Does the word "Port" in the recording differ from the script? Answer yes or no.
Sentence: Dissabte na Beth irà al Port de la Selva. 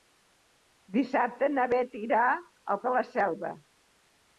yes